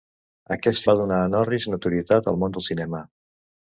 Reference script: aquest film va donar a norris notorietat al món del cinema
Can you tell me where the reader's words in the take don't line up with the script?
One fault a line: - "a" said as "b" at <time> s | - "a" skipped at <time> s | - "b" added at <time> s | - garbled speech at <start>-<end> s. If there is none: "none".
- "film" skipped at 0.9 s